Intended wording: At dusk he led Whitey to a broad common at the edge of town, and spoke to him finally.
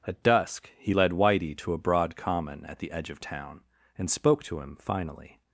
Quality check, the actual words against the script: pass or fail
pass